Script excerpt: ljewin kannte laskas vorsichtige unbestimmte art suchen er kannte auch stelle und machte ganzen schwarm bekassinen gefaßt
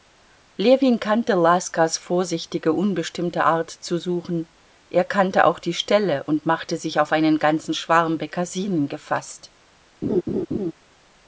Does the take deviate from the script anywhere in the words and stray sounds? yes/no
yes